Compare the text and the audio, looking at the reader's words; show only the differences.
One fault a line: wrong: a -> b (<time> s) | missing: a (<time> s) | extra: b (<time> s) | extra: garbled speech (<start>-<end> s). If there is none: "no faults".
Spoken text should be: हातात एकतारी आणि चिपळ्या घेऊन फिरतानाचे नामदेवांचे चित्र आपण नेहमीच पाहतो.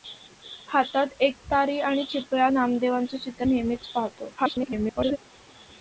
missing: घेऊन फिरतानाचे (2.5 s)
missing: आपण (3.5 s)
extra: garbled speech (4.4-5.2 s)